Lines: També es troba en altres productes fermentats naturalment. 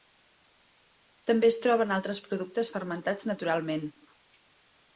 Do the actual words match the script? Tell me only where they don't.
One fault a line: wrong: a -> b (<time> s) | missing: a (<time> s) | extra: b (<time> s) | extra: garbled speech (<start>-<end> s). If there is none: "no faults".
no faults